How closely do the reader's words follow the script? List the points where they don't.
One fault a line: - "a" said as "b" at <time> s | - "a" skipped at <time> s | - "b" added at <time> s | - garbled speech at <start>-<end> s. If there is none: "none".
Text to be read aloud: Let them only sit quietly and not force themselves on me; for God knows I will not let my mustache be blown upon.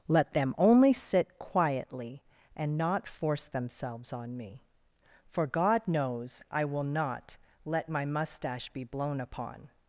none